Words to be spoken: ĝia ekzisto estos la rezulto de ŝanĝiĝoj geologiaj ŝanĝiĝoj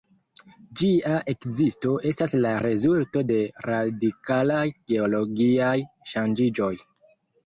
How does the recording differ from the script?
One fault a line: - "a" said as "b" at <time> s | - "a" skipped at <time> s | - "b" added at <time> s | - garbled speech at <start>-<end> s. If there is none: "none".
- "estos" said as "estas" at 2.1 s
- "ŝanĝiĝoj" said as "radikalaj" at 3.7 s